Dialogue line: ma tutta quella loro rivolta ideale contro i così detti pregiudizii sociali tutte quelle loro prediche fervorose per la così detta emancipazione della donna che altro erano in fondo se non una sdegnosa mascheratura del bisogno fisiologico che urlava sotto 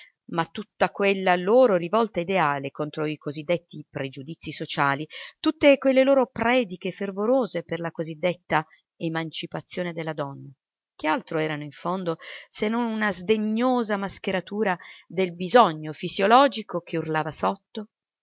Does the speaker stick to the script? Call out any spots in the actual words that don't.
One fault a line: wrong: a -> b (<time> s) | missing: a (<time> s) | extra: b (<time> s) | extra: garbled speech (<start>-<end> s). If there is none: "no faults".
no faults